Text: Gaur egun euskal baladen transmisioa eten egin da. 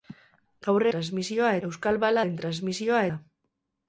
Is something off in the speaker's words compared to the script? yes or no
yes